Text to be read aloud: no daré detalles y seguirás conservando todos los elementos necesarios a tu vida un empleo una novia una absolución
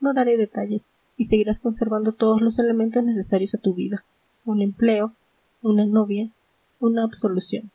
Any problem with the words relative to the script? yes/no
no